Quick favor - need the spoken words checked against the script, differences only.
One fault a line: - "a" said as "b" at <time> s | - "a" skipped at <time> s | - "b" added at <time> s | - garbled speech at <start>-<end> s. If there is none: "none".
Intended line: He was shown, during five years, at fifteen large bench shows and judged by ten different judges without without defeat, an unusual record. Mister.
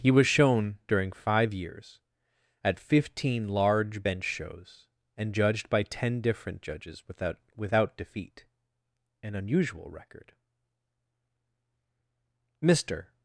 none